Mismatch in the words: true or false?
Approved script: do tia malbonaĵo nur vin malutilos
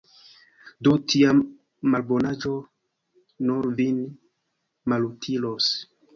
false